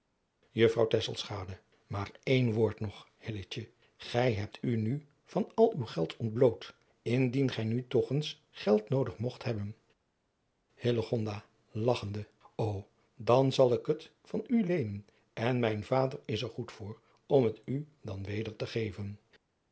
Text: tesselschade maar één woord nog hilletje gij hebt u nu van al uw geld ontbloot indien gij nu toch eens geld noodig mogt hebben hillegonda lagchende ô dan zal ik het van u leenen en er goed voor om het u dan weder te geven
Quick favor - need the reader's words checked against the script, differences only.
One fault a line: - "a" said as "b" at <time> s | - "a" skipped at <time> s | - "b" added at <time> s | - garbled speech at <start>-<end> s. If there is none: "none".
- "mijn vader is" added at 15.6 s